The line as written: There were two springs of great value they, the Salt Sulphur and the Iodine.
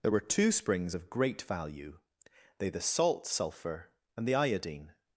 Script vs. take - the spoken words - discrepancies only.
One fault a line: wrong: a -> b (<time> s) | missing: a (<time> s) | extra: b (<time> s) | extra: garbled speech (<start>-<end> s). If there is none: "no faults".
no faults